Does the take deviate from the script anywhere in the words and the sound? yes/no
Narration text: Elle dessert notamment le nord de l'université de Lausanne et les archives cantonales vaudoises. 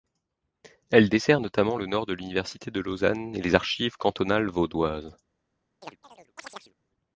yes